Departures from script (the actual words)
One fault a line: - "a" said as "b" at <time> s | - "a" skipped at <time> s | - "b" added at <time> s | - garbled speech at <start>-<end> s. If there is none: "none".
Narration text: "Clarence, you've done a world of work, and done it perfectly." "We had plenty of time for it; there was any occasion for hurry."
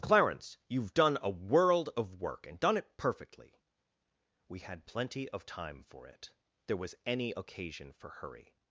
none